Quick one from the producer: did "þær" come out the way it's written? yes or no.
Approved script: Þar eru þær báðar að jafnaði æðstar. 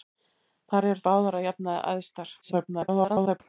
no